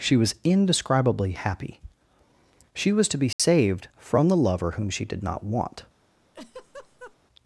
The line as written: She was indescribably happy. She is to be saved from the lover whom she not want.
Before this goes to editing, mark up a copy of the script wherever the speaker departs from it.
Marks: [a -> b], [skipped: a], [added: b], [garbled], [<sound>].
She was indescribably happy. She [is -> was] to be saved [dropout] from the lover whom she [added: did] not want. [laugh]